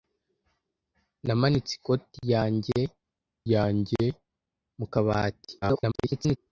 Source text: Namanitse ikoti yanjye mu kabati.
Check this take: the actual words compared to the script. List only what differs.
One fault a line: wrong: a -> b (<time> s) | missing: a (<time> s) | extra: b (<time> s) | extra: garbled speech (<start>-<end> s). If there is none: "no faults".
extra: yanjye (3.5 s)
extra: garbled speech (5.6-6.4 s)